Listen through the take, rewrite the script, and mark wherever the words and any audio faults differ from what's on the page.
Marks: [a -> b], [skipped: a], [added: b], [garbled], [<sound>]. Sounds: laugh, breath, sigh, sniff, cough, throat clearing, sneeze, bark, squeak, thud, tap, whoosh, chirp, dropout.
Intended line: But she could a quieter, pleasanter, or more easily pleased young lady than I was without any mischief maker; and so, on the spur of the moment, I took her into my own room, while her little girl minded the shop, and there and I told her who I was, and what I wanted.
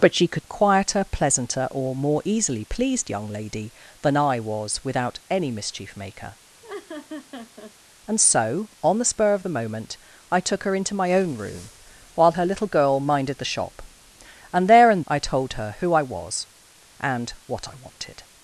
But she could a quieter, pleasanter, or more easily pleased young lady than I was without any mischief maker; [laugh] and so, on the spur of the moment, I took her into my own room, while her little girl minded the shop, and there and I told her who I was, and what I wanted.